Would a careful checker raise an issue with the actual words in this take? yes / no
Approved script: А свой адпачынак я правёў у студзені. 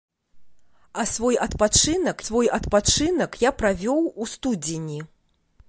yes